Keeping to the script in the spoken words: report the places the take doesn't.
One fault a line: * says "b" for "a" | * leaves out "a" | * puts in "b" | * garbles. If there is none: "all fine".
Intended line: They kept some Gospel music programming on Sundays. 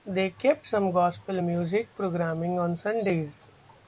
all fine